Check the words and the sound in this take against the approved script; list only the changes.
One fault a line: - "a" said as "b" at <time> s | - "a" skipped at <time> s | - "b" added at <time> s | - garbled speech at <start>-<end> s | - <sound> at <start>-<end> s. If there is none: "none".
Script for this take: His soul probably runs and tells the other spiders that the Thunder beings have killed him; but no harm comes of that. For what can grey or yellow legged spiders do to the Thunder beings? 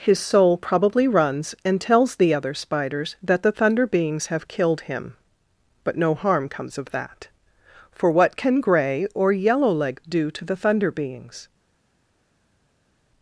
- "spiders" skipped at 10.1 s